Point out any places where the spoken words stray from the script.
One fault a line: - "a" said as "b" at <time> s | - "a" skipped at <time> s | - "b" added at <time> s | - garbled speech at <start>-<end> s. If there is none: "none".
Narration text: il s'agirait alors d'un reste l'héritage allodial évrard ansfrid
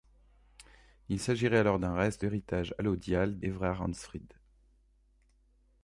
none